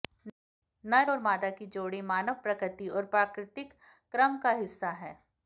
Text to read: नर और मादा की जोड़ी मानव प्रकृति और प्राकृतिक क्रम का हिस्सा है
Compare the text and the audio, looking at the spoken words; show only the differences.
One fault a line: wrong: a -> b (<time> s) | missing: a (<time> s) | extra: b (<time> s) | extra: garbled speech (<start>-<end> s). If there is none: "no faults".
no faults